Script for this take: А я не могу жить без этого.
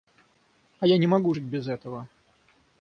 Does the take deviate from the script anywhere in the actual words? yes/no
no